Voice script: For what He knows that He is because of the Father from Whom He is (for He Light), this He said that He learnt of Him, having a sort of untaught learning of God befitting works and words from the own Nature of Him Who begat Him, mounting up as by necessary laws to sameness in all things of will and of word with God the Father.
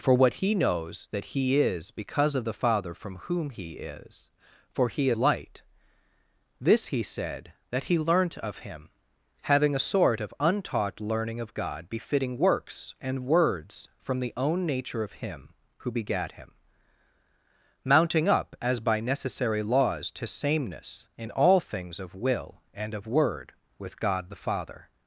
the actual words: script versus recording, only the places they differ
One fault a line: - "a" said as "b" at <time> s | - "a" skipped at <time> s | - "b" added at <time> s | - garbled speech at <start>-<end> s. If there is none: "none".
none